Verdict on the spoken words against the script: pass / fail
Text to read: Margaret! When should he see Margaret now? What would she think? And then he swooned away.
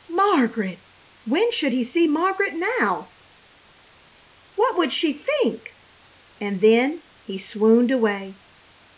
pass